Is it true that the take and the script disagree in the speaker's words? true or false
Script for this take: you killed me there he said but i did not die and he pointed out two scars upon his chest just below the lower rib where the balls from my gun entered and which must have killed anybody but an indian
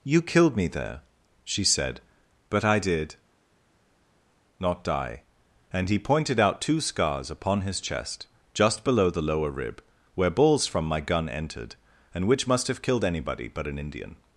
true